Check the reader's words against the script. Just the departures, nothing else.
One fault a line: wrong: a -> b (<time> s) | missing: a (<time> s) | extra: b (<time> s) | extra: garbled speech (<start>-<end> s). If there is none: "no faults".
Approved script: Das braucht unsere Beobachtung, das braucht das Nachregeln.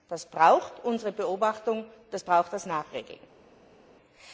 no faults